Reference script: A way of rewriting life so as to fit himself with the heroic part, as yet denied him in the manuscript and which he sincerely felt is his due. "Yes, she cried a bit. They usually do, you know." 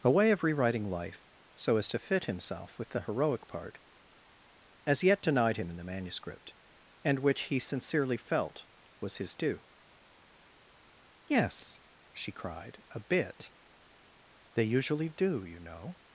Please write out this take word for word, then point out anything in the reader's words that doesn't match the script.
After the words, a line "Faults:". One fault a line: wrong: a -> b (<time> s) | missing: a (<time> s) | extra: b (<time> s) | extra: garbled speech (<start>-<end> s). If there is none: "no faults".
A way of rewriting life so as to fit himself with the heroic part, as yet denied him in the manuscript and which he sincerely felt was his due. "Yes, she cried a bit. They usually do, you know."
Faults:
wrong: is -> was (9.0 s)